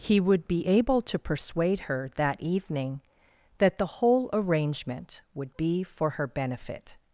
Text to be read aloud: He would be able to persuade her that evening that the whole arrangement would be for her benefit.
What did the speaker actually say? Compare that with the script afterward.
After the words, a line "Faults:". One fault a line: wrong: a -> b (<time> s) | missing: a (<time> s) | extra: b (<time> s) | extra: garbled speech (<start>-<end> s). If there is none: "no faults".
He would be able to persuade her that evening that the whole arrangement would be for her benefit.
Faults:
no faults